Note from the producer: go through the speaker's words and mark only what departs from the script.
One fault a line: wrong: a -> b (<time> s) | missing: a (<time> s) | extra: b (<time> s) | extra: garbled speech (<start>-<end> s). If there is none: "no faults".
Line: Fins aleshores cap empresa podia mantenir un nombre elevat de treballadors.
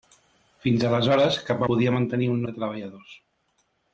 missing: empresa (1.6 s)
missing: nombre elevat (2.4 s)